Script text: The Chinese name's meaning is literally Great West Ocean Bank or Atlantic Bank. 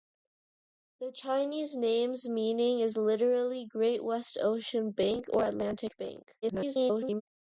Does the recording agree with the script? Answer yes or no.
no